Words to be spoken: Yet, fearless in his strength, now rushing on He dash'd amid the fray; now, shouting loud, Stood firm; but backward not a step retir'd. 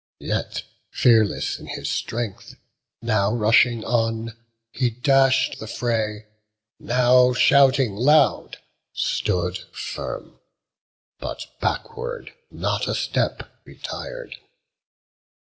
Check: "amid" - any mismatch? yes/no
yes